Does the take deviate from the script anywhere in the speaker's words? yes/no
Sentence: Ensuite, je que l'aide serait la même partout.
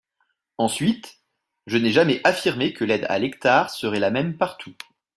yes